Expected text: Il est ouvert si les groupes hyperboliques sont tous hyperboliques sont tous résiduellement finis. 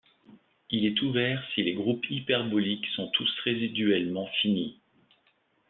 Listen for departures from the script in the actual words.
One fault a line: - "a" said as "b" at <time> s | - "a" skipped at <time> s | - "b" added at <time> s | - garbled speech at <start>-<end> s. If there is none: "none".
- "hyperboliques sont tous" skipped at 3.3 s